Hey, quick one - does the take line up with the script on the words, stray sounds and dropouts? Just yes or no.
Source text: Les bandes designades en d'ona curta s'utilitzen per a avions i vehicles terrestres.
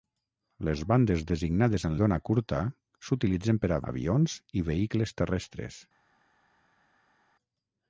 yes